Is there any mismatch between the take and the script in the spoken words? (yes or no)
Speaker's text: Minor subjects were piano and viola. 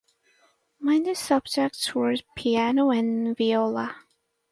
no